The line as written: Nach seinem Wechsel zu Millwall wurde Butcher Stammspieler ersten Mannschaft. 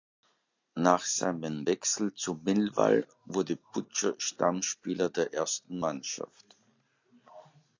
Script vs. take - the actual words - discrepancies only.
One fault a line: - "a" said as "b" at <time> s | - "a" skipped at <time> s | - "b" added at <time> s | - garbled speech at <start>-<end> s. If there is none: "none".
- "der" added at 5.1 s